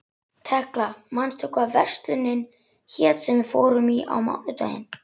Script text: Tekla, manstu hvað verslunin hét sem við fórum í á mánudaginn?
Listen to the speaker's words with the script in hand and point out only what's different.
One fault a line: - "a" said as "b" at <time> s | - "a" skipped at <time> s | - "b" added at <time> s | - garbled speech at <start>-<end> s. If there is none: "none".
none